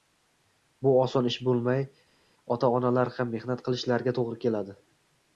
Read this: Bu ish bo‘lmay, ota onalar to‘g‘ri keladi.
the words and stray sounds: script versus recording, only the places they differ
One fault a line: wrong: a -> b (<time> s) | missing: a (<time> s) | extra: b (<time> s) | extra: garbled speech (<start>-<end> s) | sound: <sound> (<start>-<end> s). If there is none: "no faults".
extra: oson (1.0 s)
extra: ham mehnat qilishlariga (3.2 s)